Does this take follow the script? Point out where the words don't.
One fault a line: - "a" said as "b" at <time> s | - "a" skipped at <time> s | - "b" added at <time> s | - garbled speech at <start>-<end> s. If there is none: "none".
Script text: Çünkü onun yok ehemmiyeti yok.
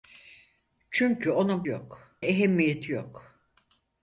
none